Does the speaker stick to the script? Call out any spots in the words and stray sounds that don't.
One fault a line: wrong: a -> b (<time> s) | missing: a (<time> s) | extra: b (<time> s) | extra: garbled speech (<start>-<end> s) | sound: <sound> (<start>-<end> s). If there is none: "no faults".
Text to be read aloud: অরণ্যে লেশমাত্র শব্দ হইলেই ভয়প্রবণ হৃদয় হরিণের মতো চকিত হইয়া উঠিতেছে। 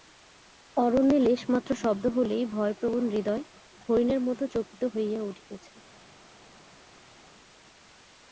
no faults